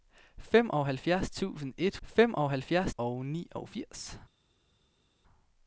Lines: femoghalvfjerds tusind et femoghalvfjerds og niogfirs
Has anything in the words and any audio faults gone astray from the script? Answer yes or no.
no